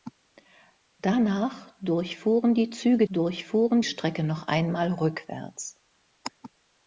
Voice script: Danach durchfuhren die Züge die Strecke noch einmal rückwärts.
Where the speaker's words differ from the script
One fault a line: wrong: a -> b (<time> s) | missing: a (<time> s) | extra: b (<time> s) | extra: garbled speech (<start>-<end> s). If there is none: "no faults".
wrong: die -> durchfuhren (3.1 s)